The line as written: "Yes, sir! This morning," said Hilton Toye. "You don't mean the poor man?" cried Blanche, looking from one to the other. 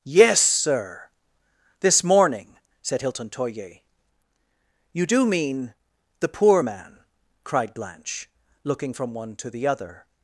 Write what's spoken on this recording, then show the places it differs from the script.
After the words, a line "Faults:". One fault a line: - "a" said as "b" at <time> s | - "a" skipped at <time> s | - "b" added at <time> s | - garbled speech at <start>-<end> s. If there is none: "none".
"Yes, sir! This morning," said Hilton Toye. "You do mean the poor man?" cried Blanche, looking from one to the other.
Faults:
- "don't" said as "do" at 5.1 s